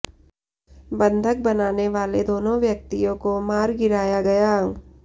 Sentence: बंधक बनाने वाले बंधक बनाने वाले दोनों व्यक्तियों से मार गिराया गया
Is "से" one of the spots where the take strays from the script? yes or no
yes